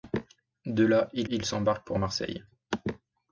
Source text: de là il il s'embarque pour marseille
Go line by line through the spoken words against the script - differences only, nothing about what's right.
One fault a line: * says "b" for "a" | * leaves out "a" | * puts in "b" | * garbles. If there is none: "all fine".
all fine